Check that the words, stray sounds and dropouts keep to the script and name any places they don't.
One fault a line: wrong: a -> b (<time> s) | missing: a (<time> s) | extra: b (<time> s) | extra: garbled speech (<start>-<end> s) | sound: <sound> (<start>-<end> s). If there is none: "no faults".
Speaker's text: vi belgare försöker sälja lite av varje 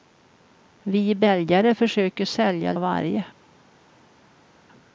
missing: lite (2.7 s)